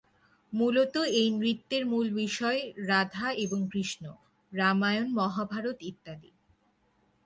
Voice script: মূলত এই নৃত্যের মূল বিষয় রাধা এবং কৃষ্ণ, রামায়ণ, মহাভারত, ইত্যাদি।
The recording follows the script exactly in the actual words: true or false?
true